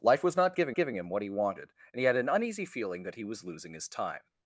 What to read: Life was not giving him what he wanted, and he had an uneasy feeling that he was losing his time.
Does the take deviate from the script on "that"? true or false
false